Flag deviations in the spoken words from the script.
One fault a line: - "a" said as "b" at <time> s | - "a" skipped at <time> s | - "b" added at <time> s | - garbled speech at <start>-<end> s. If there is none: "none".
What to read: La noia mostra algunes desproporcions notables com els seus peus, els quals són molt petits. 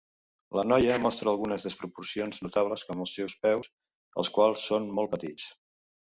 none